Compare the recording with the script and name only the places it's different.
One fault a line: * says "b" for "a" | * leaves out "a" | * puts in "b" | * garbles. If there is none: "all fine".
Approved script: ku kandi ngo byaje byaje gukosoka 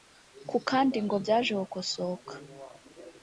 * leaves out "byaje"